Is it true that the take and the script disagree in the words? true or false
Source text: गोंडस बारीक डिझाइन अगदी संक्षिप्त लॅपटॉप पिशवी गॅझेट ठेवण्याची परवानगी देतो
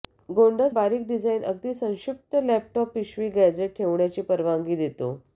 false